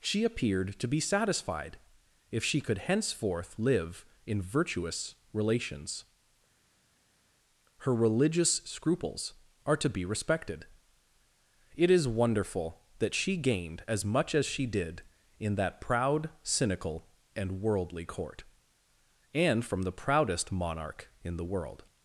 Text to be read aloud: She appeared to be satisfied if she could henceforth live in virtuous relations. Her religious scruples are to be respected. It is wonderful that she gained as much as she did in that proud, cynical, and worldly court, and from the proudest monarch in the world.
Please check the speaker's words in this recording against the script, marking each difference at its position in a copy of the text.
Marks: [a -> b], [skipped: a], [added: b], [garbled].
She appeared to be satisfied if she could henceforth live in virtuous relations. Her religious scruples are to be respected. It is wonderful that she gained as much as she did in that proud, cynical, and worldly court, and from the proudest monarch in the world.